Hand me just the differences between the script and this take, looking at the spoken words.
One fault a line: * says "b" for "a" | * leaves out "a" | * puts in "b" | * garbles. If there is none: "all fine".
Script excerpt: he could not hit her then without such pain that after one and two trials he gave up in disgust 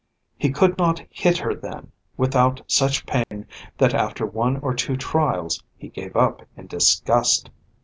* says "or" for "and"